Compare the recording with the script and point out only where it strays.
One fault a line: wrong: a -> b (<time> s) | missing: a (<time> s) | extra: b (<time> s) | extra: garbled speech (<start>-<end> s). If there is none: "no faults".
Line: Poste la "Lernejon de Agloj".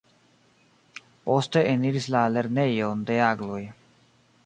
extra: eniris (1.7 s)